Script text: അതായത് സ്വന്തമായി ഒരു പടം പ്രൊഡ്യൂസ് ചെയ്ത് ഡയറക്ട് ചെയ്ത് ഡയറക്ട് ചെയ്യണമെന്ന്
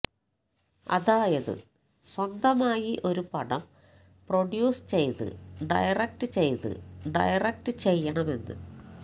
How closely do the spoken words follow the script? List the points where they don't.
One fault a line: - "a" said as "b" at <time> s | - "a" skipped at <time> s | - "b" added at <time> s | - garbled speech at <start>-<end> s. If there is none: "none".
none